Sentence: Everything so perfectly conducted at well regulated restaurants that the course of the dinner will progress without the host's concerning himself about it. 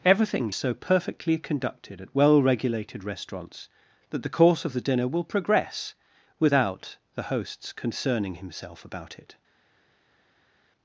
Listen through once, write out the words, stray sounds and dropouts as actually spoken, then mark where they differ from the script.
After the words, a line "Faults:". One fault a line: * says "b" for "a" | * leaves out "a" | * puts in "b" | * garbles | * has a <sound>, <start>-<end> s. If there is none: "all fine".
Everything so perfectly conducted at well regulated restaurants that the course of the dinner will progress without the host's concerning himself about it.
Faults:
all fine